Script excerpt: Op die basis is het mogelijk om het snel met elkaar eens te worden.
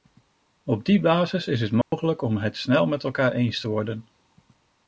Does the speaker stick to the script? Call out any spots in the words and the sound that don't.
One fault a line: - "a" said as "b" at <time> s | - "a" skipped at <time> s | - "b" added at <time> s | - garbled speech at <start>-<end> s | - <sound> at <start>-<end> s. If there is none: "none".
- dropout at 1.8-1.9 s